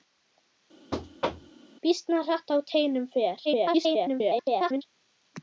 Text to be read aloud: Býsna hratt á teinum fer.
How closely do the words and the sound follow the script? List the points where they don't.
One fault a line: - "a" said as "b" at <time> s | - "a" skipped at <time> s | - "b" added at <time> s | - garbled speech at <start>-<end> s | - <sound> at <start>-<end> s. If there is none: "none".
- thud at 0.9-1.6 s
- garbled speech at 3.4-4.8 s